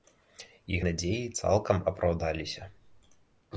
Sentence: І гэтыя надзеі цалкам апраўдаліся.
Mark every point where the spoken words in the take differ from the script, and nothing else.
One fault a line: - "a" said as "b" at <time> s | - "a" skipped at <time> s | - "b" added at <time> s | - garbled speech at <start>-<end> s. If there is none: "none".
- "гэтыя" skipped at 0.8 s